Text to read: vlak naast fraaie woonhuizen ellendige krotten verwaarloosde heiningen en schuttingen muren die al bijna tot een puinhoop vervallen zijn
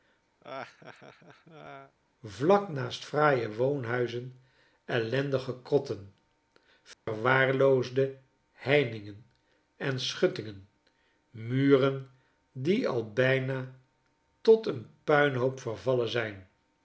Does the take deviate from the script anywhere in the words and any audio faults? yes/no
yes